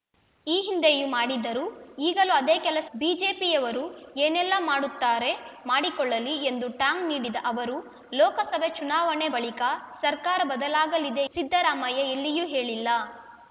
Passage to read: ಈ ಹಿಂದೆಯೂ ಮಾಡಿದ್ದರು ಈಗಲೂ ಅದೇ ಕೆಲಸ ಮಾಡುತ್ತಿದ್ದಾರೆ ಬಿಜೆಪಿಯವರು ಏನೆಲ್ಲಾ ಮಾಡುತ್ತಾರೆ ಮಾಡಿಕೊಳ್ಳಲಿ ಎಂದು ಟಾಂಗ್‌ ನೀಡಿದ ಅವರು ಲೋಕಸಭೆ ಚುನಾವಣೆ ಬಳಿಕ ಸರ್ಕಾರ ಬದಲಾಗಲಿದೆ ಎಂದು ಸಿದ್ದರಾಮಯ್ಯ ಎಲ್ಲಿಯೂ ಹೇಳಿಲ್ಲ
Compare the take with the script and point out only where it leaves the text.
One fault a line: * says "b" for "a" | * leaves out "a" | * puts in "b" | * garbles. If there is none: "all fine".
* leaves out "ಮಾಡುತ್ತಿದ್ದಾರೆ"
* leaves out "ಎಂದು"